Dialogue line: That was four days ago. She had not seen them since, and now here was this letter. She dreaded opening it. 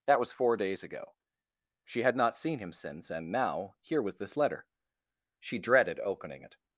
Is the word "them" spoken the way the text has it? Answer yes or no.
no